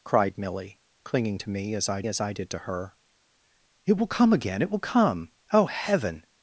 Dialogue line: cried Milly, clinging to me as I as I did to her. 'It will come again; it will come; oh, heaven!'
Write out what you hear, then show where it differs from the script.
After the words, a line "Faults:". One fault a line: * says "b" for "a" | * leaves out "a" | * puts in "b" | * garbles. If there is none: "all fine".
cried Milly, clinging to me as I as I did to her. 'It will come again; it will come; oh, heaven!'
Faults:
all fine